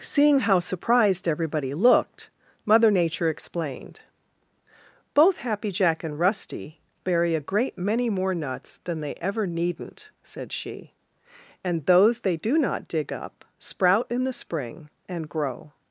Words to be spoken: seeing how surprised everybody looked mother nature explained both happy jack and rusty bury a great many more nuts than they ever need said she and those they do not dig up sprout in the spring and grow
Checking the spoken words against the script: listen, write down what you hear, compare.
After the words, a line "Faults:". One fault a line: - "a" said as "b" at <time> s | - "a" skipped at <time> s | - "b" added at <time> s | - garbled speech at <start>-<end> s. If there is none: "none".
seeing how surprised everybody looked mother nature explained both happy jack and rusty bury a great many more nuts than they ever needn't said she and those they do not dig up sprout in the spring and grow
Faults:
- "need" said as "needn't" at 9.4 s